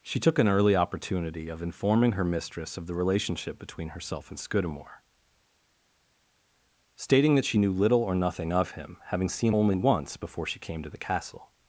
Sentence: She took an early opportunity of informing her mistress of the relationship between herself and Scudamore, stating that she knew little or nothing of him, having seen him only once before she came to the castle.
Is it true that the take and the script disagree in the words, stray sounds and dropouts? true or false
true